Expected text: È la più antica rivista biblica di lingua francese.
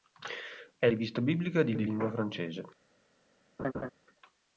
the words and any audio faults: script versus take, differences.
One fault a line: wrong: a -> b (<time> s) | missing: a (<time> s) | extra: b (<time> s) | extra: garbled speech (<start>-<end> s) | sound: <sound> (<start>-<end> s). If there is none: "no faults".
missing: la più antica (0.9 s)
extra: di (1.7 s)
sound: laugh (3.6-3.9 s)